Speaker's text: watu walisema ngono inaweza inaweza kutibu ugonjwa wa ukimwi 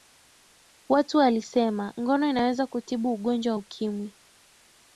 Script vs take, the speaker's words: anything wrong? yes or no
yes